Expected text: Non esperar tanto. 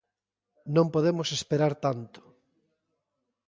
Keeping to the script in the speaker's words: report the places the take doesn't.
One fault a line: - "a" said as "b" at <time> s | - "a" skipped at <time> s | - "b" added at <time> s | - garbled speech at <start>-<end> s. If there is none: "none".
- "podemos" added at 0.9 s